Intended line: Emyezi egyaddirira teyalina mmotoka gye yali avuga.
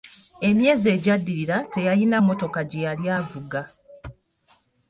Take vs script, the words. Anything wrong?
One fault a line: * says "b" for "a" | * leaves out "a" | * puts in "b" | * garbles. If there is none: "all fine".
all fine